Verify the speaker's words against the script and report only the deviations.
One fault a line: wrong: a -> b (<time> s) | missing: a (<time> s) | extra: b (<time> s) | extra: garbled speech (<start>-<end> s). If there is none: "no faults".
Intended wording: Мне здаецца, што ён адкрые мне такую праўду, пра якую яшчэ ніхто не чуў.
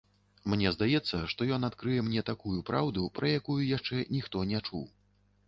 no faults